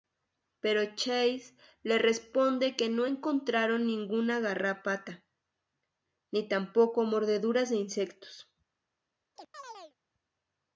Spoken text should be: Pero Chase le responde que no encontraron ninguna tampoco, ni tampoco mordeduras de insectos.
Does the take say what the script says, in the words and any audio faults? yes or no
no